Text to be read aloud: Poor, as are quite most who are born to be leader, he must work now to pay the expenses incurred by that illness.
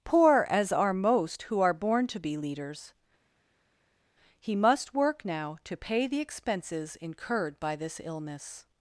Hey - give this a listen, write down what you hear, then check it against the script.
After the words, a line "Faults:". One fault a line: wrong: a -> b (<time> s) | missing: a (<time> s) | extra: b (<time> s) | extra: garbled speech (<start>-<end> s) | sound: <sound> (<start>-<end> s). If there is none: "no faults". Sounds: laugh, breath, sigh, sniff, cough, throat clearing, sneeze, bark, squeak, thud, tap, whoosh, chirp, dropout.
Poor, as are most who are born to be leaders, he must work now to pay the expenses incurred by this illness.
Faults:
missing: quite (0.9 s)
wrong: leader -> leaders (2.4 s)
wrong: that -> this (7.8 s)